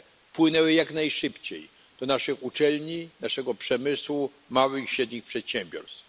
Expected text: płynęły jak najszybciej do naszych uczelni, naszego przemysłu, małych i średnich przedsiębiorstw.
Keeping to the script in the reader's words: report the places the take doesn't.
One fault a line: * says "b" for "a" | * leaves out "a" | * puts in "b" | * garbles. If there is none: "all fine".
all fine